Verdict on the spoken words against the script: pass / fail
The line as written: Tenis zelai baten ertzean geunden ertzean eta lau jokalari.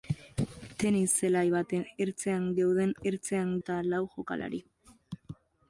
pass